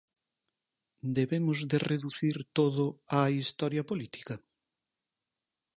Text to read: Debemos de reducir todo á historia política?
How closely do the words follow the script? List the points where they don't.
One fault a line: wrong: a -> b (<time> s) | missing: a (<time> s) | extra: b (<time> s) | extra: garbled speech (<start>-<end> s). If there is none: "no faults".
no faults